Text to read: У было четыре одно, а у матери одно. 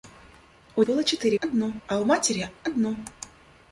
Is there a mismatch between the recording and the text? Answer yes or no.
no